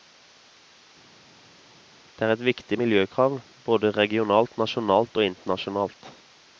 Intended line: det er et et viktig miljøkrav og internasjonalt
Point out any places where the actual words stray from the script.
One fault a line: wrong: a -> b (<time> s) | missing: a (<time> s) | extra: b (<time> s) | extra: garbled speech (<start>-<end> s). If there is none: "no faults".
missing: et (2.4 s)
extra: både regionalt nasjonalt (3.7 s)